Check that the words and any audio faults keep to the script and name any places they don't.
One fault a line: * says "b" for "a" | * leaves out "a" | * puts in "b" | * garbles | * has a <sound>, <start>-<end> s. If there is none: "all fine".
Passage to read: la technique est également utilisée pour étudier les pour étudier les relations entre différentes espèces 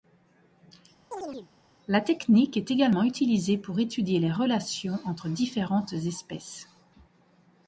* has a chirp, 1.1-1.5 s
* leaves out "pour étudier les"